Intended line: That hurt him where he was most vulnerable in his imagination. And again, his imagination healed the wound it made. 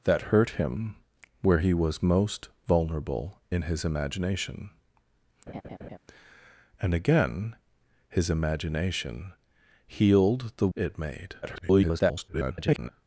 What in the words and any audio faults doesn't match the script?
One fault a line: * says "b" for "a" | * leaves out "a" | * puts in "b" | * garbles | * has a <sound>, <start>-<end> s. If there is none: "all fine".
* has a laugh, 5.5-6.0 s
* leaves out "wound"
* garbles